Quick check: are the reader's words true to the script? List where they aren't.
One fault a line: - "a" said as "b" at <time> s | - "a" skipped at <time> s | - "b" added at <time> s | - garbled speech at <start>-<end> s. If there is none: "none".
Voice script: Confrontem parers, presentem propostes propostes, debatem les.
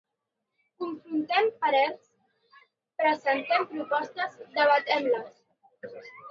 - "propostes" skipped at 4.4 s